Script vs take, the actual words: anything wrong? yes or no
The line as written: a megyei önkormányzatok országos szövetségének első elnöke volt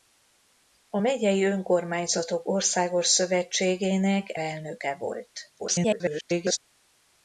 yes